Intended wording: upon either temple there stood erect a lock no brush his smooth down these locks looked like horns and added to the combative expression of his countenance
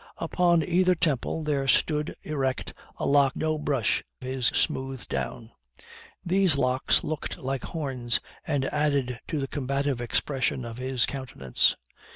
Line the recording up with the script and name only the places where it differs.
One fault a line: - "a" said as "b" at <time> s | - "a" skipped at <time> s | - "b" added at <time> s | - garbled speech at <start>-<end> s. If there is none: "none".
none